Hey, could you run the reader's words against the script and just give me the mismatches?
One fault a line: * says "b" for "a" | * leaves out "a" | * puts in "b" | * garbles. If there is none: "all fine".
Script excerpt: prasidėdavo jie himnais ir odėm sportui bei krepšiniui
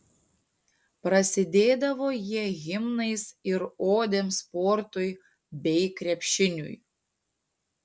all fine